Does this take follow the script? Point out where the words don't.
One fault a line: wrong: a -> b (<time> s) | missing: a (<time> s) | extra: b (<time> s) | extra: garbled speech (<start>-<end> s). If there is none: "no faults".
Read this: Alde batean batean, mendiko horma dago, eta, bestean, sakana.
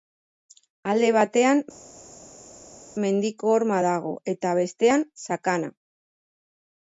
missing: batean (1.6 s)